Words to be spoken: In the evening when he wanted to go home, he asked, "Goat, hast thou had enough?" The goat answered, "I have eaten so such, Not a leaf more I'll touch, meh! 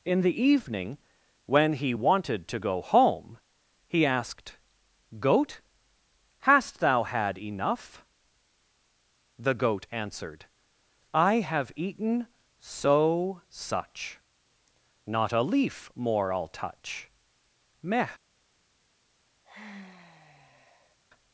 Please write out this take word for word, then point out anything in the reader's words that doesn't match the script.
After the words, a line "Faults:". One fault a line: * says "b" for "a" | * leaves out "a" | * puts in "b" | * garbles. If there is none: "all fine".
In the evening when he wanted to go home, he asked, "Goat, hast thou had enough?" The goat answered, "I have eaten so such, Not a leaf more I'll touch, meh!
Faults:
all fine